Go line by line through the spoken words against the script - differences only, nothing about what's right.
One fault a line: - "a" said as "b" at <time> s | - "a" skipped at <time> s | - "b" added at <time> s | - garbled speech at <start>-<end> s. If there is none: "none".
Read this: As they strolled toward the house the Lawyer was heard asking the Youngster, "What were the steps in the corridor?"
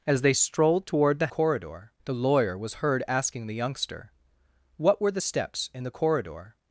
- "house" said as "corridor" at 1.3 s